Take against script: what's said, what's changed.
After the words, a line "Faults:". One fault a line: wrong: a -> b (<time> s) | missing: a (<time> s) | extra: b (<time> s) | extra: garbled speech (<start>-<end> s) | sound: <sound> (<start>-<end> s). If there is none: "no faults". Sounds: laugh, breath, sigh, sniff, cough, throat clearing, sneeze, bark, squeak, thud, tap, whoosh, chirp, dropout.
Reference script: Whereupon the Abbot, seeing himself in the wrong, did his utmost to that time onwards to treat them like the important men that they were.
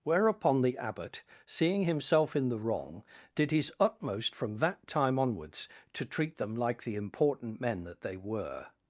Whereupon the Abbot, seeing himself in the wrong, did his utmost from that time onwards to treat them like the important men that they were.
Faults:
wrong: to -> from (4.3 s)